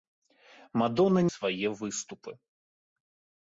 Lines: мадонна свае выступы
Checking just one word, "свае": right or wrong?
right